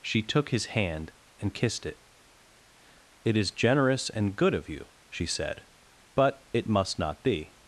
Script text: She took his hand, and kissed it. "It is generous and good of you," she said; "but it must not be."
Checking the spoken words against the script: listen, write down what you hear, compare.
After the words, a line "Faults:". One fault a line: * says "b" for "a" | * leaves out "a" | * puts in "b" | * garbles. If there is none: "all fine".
She took his hand, and kissed it. "It is generous and good of you," she said; "but it must not be."
Faults:
all fine